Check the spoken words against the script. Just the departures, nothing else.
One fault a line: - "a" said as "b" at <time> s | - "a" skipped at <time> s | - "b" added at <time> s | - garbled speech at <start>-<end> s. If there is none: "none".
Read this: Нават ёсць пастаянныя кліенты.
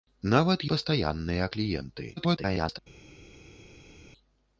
- "ёсць" skipped at 0.6 s
- garbled speech at 2.2-2.8 s